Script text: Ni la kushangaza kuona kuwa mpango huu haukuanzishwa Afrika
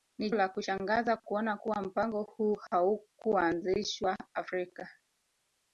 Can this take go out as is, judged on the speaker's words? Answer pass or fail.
pass